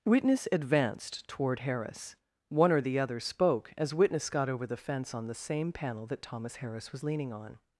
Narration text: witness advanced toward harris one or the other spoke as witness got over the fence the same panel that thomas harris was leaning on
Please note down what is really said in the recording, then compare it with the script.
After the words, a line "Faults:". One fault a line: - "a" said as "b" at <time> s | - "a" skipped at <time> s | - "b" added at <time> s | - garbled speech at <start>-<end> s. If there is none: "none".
witness advanced toward harris one or the other spoke as witness got over the fence on the same panel that thomas harris was leaning on
Faults:
- "on" added at 5.1 s